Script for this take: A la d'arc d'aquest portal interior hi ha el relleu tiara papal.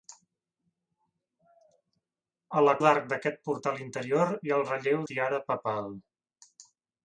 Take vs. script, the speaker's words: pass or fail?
pass